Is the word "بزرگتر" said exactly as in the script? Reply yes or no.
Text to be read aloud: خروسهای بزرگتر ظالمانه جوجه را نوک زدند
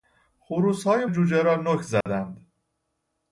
no